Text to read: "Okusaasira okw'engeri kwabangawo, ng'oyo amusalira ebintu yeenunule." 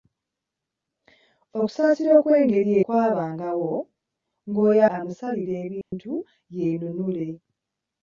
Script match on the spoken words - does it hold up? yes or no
yes